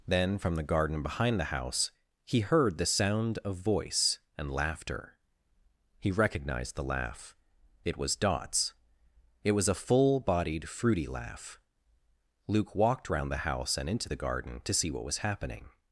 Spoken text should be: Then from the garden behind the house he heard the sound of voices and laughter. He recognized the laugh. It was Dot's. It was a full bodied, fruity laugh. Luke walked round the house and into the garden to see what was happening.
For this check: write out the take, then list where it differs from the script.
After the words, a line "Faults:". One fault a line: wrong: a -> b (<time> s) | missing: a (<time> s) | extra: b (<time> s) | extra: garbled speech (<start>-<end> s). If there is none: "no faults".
Then from the garden behind the house he heard the sound of voice and laughter. He recognized the laugh. It was Dot's. It was a full bodied, fruity laugh. Luke walked round the house and into the garden to see what was happening.
Faults:
wrong: voices -> voice (3.6 s)